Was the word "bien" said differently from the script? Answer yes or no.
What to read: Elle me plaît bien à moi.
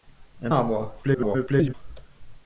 yes